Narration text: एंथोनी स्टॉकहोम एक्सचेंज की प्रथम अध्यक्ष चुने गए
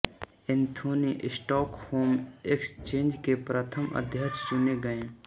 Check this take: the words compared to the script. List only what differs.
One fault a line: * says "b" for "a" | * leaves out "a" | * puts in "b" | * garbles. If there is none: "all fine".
* says "के" for "की"